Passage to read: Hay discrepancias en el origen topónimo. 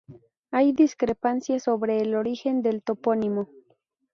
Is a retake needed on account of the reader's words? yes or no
yes